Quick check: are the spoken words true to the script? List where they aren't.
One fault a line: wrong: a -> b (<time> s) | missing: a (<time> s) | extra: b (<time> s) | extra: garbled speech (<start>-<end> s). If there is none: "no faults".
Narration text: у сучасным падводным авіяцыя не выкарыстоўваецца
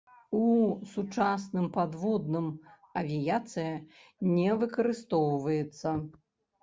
no faults